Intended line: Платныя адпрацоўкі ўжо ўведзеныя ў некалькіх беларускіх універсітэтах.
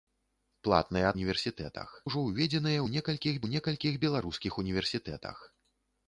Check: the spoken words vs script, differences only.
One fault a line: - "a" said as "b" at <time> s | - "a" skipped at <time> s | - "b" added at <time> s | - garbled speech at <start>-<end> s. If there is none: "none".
- "адпрацоўкі" said as "універсітэтах" at 1.2 s
- "ў некалькіх" added at 3.4 s